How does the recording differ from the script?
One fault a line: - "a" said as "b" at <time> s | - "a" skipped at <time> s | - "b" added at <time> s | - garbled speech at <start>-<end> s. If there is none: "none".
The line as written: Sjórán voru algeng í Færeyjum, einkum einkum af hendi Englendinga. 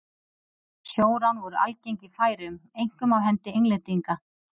- "einkum" skipped at 3.1 s